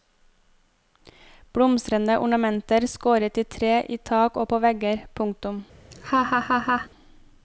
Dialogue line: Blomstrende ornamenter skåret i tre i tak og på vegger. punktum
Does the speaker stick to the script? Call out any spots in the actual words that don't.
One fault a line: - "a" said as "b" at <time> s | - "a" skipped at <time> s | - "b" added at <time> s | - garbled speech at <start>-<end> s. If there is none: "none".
none